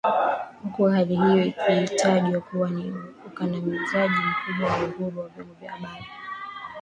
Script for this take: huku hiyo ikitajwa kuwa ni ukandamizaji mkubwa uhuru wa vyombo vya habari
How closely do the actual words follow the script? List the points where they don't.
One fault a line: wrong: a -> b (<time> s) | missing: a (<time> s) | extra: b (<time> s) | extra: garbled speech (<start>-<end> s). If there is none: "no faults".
extra: hali (0.8 s)
extra: wa (4.7 s)